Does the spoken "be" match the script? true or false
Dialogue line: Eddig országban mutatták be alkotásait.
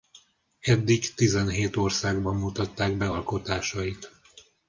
true